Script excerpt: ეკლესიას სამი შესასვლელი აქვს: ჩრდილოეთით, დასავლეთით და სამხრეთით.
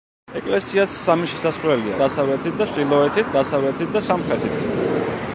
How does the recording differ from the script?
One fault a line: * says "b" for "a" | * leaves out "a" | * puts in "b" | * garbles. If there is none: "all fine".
* says "დასავლეთით" for "აქვს"